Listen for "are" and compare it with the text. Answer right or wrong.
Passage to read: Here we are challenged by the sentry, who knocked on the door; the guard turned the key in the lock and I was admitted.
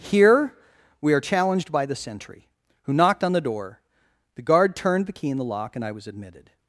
right